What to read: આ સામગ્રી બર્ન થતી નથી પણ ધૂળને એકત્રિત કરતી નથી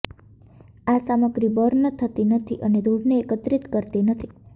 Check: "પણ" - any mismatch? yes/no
yes